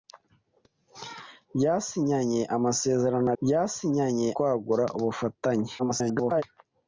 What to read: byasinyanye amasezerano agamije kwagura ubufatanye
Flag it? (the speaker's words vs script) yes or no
yes